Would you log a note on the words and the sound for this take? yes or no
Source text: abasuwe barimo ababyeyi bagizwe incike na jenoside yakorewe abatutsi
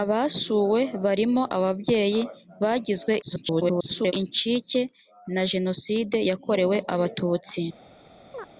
yes